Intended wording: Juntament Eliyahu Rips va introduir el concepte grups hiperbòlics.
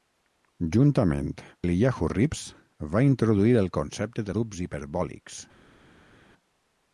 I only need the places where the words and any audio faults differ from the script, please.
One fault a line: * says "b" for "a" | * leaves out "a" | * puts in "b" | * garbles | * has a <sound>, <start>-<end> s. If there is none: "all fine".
all fine